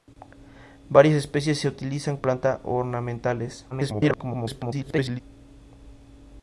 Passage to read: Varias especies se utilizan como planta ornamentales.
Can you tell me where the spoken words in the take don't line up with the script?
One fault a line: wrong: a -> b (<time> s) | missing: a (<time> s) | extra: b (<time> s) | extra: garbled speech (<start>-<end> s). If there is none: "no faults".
missing: como (2.2 s)
extra: garbled speech (3.7-5.2 s)